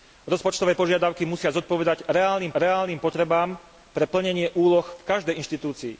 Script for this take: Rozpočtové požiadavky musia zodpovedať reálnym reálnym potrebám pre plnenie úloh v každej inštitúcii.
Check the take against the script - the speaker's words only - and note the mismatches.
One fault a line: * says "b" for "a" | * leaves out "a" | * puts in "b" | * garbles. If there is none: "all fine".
all fine